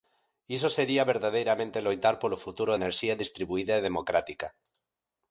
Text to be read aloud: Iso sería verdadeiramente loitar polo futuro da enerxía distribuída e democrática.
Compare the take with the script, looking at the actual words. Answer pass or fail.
fail